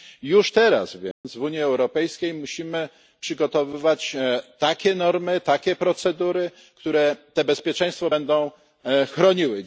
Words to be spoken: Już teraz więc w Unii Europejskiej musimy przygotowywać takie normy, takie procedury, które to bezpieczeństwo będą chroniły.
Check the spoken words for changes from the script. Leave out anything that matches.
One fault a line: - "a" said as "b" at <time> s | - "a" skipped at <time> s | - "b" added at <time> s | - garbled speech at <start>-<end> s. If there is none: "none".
none